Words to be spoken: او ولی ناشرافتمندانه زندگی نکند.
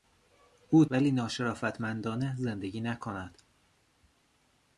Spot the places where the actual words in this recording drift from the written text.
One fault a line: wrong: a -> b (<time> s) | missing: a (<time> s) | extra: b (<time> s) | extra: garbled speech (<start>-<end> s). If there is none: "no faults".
no faults